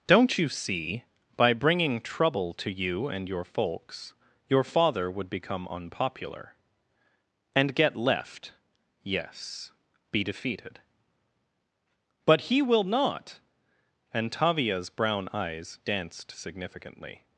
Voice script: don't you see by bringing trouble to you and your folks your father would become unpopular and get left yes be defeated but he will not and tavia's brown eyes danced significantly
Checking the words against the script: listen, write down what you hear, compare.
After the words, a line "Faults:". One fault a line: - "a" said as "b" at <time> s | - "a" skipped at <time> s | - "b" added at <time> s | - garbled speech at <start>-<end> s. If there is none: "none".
don't you see by bringing trouble to you and your folks your father would become unpopular and get left yes be defeated but he will not and tavia's brown eyes danced significantly
Faults:
none